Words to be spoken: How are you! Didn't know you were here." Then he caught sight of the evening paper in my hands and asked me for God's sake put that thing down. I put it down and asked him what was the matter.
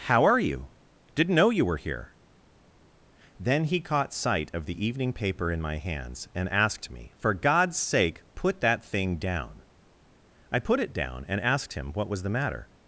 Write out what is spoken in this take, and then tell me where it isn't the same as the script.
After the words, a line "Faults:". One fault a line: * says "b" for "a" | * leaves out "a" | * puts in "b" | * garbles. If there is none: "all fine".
How are you! Didn't know you were here." Then he caught sight of the evening paper in my hands and asked me for God's sake put that thing down. I put it down and asked him what was the matter.
Faults:
all fine